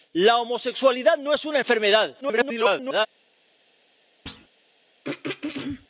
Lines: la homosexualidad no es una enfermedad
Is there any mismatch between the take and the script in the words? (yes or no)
yes